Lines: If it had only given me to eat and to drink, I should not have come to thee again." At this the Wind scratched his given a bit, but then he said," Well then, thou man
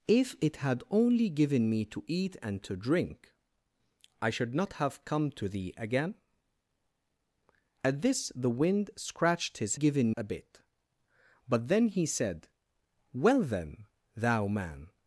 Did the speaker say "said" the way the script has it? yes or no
yes